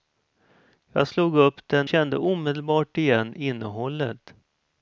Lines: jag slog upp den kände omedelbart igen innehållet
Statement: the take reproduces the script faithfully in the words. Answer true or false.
true